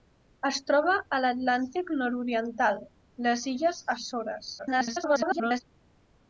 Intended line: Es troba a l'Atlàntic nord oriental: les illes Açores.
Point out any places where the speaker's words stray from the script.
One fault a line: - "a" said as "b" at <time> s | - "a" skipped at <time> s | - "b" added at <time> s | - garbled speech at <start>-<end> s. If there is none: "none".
- garbled speech at 4.6-5.6 s